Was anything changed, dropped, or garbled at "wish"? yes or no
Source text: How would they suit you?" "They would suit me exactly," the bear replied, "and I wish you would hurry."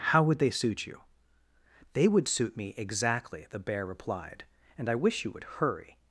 no